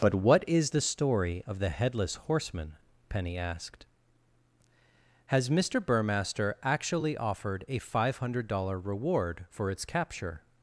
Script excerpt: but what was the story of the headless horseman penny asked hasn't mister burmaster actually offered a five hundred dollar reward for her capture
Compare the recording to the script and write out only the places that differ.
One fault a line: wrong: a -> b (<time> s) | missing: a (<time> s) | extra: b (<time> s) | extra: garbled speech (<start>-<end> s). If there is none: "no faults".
wrong: was -> is (0.5 s)
wrong: hasn't -> has (5.3 s)
wrong: her -> its (9.7 s)